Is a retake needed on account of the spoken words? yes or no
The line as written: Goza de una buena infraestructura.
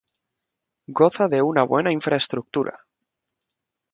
no